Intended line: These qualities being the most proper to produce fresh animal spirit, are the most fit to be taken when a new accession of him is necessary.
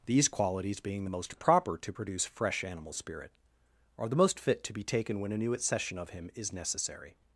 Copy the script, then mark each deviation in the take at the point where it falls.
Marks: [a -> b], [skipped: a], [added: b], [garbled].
These qualities being the most proper to produce fresh animal spirit, are the most fit to be taken when a new accession of him is necessary.